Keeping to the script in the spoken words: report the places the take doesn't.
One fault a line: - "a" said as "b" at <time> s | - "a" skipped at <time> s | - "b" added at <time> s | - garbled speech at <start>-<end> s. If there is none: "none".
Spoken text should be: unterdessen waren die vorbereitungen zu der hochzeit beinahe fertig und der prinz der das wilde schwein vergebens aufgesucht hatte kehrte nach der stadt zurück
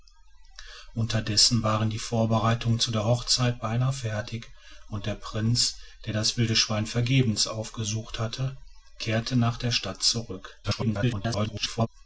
- garbled speech at 10.6-11.9 s